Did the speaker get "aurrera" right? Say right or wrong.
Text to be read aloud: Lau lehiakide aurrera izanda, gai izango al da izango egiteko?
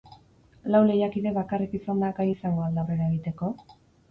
wrong